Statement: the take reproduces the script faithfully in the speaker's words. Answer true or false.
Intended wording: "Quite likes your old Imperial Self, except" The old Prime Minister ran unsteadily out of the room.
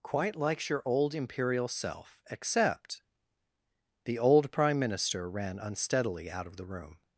true